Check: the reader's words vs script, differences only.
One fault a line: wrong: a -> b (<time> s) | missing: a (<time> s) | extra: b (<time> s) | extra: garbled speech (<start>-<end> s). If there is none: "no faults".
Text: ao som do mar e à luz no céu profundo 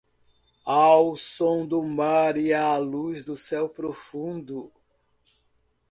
wrong: no -> do (3.2 s)